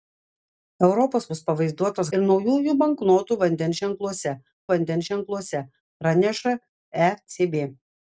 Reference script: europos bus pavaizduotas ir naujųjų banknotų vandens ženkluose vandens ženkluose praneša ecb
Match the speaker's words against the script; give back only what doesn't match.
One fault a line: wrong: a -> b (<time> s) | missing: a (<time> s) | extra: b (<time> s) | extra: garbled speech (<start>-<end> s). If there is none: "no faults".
no faults